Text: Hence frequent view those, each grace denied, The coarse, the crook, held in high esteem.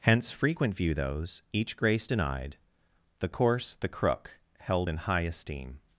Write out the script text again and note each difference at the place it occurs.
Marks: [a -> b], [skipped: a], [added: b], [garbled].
Hence frequent view those, each grace denied, The coarse, the crook, held in high esteem.